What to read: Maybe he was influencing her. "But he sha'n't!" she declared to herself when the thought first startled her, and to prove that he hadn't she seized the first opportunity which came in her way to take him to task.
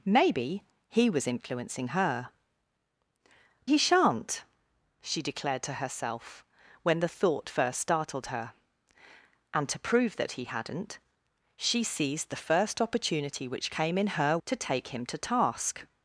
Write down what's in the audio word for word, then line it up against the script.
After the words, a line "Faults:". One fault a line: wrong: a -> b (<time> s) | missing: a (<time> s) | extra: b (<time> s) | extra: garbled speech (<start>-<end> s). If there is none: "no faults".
Maybe he was influencing her. "He sha'n't!" she declared to herself when the thought first startled her, and to prove that he hadn't she seized the first opportunity which came in her to take him to task.
Faults:
missing: But (2.3 s)
missing: way (14.4 s)